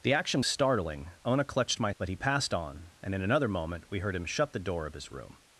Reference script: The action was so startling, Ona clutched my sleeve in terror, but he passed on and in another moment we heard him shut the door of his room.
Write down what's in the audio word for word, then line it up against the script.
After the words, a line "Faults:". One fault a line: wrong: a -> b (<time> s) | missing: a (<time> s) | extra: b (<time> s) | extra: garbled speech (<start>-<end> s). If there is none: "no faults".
The action startling, Ona clutched my but he passed on and in another moment we heard him shut the door of his room.
Faults:
missing: was so (0.4 s)
missing: sleeve in terror (1.9 s)